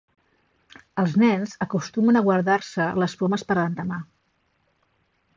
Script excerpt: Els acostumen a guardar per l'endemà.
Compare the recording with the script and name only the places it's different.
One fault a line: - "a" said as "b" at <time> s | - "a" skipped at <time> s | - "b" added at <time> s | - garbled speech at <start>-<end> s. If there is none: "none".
- "nens" added at 1.2 s
- "se les pomes" added at 2.7 s